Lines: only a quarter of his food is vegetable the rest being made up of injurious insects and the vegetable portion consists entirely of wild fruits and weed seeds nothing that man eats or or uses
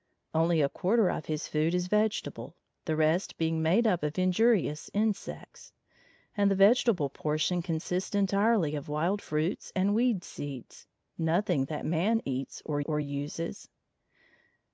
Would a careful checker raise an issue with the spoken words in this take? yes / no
no